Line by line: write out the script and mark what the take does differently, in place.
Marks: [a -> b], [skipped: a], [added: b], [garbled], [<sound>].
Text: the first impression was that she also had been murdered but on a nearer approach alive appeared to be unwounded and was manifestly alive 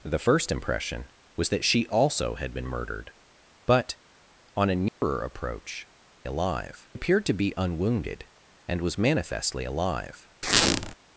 the first impression was that she also had been murdered but on a nearer [dropout] approach alive appeared to be unwounded and was manifestly alive [squeak]